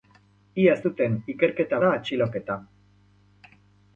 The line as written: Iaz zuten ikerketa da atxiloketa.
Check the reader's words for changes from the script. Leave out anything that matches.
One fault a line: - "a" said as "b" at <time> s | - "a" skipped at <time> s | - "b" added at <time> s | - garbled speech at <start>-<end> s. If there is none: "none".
none